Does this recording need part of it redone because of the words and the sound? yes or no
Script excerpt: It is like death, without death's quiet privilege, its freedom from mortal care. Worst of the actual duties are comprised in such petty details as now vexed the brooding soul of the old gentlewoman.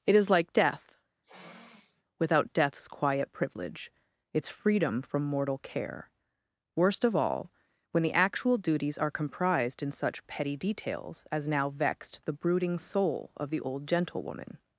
yes